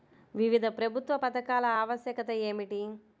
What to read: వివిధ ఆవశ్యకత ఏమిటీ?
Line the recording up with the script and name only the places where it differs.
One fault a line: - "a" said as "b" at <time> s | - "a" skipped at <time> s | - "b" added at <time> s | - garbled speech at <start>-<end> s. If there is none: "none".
- "ప్రభుత్వ పథకాల" added at 0.8 s